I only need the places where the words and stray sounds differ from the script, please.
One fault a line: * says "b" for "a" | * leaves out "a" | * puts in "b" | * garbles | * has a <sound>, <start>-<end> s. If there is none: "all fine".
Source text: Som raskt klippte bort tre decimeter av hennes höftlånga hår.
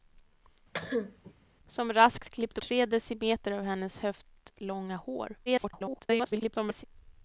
* has a cough, 0.7-1.3 s
* leaves out "bort"
* garbles